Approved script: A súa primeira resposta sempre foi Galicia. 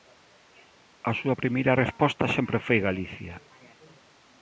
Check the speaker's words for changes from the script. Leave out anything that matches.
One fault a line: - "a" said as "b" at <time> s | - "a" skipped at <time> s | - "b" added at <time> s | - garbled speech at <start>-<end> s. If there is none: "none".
none